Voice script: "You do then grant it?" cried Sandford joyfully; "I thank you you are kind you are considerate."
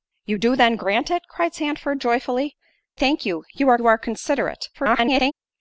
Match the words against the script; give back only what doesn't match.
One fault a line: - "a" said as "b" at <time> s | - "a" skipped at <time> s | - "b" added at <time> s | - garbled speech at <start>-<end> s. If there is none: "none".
- "I" skipped at 2.6 s
- "kind" skipped at 3.8 s
- garbled speech at 4.7-5.3 s